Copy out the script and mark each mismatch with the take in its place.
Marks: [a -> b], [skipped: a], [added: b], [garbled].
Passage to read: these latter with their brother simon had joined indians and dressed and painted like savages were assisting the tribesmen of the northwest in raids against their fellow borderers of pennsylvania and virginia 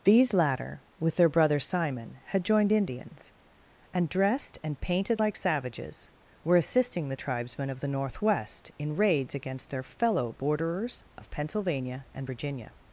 these latter with their brother simon had joined indians and dressed and painted like savages were assisting the tribesmen of the northwest in raids against their fellow borderers of pennsylvania and virginia